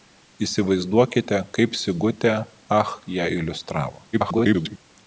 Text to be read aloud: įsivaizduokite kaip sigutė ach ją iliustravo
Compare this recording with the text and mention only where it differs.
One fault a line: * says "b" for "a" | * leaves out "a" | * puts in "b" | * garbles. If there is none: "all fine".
* garbles